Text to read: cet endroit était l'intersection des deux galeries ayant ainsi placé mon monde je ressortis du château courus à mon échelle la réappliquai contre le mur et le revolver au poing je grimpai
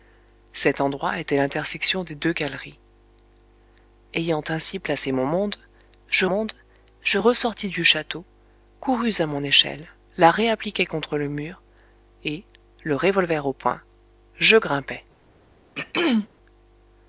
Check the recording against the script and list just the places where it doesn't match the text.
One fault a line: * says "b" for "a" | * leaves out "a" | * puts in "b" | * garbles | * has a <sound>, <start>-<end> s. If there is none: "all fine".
* puts in "monde je"
* has a throat clearing, 15.8-16.3 s